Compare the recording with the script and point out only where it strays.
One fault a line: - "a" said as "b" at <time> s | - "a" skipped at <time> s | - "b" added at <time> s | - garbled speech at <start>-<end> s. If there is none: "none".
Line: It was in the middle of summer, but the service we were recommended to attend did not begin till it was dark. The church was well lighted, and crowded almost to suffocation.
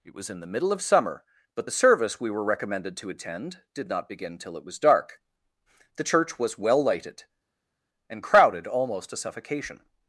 none